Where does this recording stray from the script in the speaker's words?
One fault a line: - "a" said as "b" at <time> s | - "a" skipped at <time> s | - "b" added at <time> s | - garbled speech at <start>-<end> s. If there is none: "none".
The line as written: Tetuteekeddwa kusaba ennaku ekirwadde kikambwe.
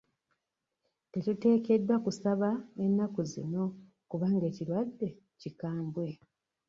- "zino kubanga" added at 3.3 s